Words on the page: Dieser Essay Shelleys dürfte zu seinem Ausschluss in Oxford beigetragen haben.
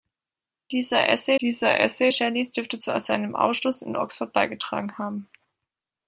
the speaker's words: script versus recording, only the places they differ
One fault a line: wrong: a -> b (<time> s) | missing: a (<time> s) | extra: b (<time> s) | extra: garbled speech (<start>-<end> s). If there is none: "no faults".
extra: dieser Essay (1.4 s)